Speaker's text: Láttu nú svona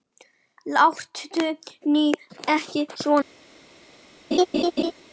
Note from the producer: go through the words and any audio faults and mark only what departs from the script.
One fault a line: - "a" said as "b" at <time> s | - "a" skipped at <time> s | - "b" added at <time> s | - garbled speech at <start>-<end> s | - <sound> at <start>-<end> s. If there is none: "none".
- "ekki" added at 2.6 s
- laugh at 4.3-4.9 s